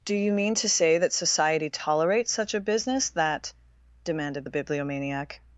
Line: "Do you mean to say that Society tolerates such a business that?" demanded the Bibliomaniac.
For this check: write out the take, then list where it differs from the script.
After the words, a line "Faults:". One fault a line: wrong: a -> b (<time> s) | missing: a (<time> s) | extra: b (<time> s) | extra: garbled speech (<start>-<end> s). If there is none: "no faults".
"Do you mean to say that Society tolerates such a business that?" demanded the Bibliomaniac.
Faults:
no faults